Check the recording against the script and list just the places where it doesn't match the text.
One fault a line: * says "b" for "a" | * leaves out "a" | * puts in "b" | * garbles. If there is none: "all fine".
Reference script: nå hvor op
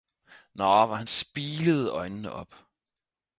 * puts in "han spilede øjnene"